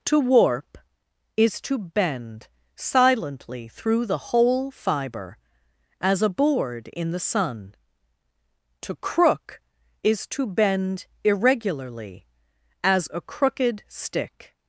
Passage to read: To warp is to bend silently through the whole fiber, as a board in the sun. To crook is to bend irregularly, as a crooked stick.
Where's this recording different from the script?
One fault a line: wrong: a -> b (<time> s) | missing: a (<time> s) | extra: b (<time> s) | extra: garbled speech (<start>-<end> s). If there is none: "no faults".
no faults